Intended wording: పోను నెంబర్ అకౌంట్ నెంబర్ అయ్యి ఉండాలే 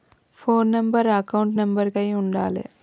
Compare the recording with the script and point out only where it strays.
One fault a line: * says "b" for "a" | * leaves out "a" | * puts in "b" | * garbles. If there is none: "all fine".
all fine